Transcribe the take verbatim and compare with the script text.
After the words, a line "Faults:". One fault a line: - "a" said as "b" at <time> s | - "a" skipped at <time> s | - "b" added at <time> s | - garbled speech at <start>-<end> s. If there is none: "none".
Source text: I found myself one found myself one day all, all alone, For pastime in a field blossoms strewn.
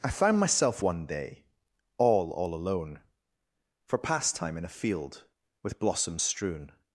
I found myself one day all, all alone, For pastime in a field with blossoms strewn.
Faults:
- "found myself one" skipped at 1.1 s
- "with" added at 5.6 s